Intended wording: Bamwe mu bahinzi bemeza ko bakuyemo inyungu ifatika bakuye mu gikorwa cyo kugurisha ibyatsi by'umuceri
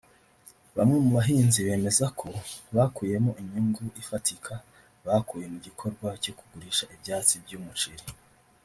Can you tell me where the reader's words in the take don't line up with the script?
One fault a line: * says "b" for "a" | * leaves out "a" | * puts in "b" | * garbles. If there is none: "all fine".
all fine